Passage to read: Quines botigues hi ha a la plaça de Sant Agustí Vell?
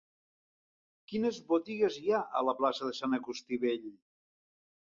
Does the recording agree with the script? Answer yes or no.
yes